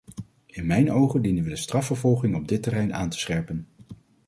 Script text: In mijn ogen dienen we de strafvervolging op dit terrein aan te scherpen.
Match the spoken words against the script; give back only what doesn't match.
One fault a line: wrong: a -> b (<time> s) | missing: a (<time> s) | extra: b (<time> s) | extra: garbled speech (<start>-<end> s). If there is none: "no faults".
no faults